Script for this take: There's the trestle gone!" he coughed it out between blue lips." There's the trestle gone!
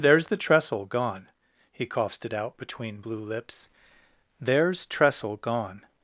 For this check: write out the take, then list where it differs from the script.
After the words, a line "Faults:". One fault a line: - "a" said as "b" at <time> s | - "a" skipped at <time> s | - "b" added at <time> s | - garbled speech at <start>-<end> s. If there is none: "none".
There's the trestle gone!" he coughed it out between blue lips." There's trestle gone!
Faults:
- "the" skipped at 4.9 s